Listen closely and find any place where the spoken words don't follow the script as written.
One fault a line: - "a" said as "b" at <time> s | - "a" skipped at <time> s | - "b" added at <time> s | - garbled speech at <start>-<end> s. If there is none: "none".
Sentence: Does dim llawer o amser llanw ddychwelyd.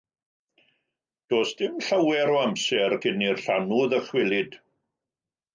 - "cyn i'r" added at 3.0 s